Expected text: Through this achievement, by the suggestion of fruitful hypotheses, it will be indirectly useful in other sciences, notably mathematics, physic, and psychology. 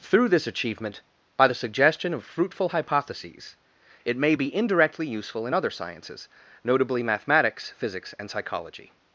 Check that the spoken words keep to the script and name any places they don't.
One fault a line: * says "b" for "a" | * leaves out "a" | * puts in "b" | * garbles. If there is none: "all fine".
* says "may" for "will"
* says "physics" for "physic"